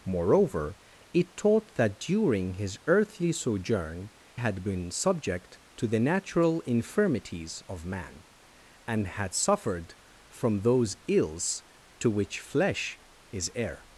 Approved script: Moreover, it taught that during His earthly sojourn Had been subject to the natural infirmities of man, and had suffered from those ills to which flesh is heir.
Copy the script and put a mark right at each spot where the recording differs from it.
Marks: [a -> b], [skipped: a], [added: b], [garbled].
Moreover, it taught that during His earthly sojourn Had been subject to the natural infirmities of man, and had suffered from those ills to which flesh is heir.